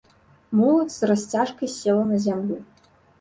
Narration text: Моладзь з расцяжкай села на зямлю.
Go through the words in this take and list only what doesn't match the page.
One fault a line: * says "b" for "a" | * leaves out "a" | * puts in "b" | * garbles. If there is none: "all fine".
all fine